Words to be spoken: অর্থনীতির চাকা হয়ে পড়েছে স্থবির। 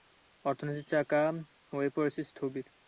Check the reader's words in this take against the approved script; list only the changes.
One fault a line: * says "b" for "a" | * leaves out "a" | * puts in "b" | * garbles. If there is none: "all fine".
all fine